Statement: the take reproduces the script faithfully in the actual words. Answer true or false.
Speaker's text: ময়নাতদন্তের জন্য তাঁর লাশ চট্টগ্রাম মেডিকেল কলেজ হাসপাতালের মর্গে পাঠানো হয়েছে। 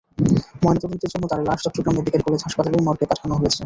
true